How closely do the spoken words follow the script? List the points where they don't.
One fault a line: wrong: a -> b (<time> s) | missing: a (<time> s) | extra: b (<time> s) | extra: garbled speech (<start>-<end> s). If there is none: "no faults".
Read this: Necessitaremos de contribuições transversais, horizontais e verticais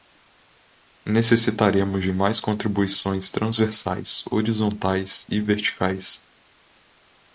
extra: mais (2.1 s)